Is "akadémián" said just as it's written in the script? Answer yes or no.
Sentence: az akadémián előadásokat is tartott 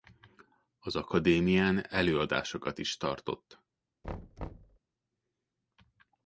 yes